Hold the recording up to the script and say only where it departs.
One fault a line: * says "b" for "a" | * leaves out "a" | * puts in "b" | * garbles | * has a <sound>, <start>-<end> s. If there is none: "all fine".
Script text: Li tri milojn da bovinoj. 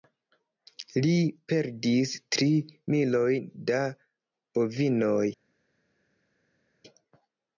* puts in "perdis"